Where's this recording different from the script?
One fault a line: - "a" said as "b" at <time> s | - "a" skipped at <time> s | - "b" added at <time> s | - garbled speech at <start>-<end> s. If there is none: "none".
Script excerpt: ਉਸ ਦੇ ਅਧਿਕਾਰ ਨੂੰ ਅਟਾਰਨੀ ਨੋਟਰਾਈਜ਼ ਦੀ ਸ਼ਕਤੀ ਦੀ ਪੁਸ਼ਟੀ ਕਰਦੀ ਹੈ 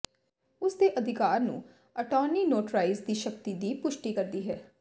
none